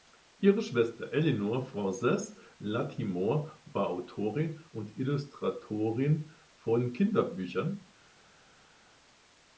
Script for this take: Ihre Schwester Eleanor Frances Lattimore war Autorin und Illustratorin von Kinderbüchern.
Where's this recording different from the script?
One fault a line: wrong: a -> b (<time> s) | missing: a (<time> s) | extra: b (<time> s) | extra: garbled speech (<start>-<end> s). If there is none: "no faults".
no faults